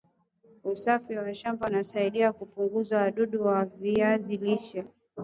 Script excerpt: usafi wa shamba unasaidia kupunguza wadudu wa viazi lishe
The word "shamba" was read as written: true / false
true